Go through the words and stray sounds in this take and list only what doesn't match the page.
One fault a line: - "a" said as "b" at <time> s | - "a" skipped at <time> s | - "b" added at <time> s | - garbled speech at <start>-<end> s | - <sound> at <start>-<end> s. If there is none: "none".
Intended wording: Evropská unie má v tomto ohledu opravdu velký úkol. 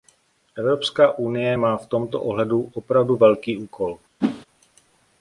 - whoosh at 4.2-4.5 s